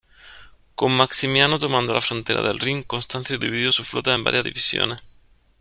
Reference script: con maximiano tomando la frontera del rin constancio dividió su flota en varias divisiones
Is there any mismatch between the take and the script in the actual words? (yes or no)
no